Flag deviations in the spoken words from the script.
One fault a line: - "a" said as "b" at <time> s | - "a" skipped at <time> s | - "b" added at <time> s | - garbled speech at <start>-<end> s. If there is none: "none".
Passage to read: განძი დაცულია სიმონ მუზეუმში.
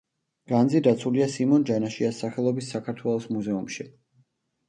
- "ჯანაშიას სახელობის საქართველოს" added at 1.7 s